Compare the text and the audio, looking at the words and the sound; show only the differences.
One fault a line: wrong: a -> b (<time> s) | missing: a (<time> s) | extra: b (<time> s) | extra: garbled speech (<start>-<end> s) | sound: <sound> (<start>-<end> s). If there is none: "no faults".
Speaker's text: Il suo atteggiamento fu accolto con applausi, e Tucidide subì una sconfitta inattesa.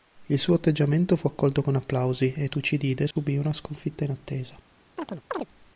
sound: dropout (3.1-3.2 s)
sound: chirp (5.0-5.5 s)